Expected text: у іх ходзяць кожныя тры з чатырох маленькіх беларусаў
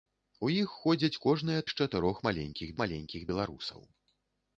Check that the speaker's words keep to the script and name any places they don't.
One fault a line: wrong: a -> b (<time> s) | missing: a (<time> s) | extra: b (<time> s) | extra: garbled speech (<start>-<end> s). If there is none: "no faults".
missing: тры (1.7 s)
extra: маленькіх (2.8 s)